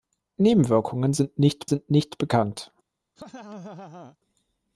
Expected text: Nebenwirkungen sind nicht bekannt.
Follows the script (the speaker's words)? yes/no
no